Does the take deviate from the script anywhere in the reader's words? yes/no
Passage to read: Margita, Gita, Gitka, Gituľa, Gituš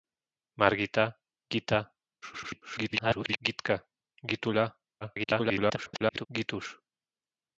yes